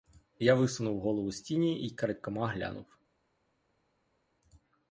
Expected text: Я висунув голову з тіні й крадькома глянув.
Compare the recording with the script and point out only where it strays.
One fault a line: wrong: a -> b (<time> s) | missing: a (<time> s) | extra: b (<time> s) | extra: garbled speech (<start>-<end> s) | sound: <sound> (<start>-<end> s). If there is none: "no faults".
no faults